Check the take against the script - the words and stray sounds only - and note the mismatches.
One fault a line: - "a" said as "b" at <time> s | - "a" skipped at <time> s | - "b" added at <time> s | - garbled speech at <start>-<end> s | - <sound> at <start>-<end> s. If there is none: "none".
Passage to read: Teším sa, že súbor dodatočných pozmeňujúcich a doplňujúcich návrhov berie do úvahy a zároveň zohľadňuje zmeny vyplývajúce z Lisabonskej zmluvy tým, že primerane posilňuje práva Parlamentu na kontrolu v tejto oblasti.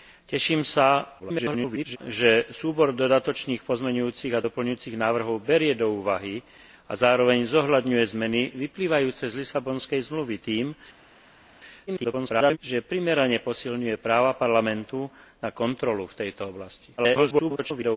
- garbled speech at 1.2-2.0 s
- garbled speech at 11.9-12.6 s
- garbled speech at 17.0-18.0 s